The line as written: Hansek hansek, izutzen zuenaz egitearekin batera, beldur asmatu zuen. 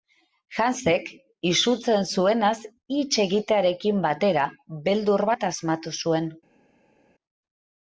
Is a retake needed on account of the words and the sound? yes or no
yes